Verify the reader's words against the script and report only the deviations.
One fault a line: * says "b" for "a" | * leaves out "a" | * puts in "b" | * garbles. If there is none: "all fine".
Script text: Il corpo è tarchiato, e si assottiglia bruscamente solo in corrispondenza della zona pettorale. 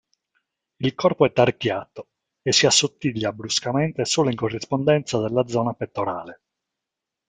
all fine